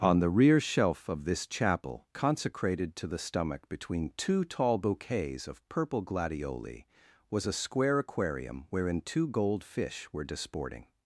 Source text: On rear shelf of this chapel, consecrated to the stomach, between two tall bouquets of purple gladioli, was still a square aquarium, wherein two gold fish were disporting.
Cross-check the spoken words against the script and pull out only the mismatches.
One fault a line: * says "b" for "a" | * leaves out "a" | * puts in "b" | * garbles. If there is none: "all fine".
* puts in "the"
* leaves out "still"